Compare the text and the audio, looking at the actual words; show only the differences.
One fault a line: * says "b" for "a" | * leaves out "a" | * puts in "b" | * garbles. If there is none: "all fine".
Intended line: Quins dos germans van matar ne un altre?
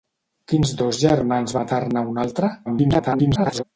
* leaves out "van"
* garbles